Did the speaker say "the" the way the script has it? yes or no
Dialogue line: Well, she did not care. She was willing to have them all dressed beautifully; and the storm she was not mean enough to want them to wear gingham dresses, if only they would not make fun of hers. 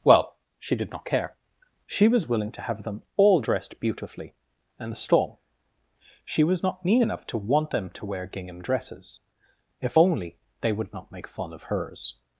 yes